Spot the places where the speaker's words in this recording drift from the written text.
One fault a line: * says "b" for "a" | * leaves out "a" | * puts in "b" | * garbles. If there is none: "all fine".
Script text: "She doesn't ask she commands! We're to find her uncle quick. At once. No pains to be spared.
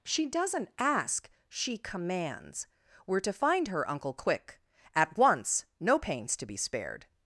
all fine